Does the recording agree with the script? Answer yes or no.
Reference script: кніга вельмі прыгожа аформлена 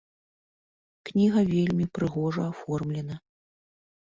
yes